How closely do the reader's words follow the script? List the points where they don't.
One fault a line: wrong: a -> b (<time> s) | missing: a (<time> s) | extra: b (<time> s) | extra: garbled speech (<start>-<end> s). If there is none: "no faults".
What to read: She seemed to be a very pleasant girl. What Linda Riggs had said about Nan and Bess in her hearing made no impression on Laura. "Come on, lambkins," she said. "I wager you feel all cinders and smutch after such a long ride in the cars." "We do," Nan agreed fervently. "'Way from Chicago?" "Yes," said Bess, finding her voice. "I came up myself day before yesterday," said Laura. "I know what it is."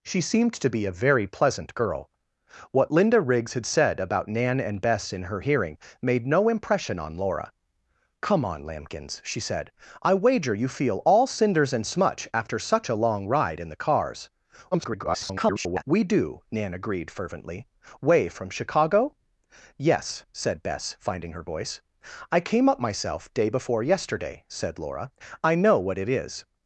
extra: garbled speech (14.7-15.8 s)